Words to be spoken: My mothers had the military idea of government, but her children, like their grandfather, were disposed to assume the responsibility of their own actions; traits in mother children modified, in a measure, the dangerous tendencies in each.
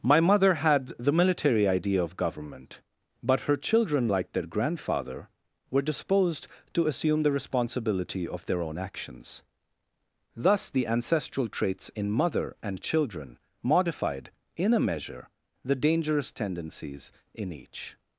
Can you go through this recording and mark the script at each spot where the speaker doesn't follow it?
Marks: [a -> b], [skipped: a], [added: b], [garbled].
My [mothers -> mother] had the military idea of government, but her children, like their grandfather, were disposed to assume the responsibility of their own actions; [added: thus the ancestral] traits in mother [added: and] children modified, in a measure, the dangerous tendencies in each.